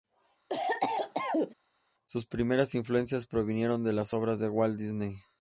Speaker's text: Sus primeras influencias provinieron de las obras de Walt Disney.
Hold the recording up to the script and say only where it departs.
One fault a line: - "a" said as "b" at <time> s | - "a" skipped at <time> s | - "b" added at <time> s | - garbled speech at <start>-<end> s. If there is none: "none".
none